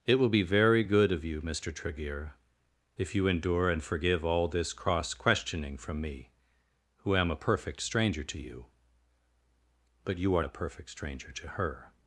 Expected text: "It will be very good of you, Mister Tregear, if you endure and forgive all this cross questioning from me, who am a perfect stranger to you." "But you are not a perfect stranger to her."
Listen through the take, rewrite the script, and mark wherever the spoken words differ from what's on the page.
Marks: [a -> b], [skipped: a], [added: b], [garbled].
"It will be very good of you, Mister Tregear, if you endure and forgive all this cross questioning from me, who am a perfect stranger to you." "But you are [skipped: not] a perfect stranger to her."